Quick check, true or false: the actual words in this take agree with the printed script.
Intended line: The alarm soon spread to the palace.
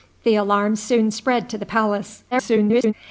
false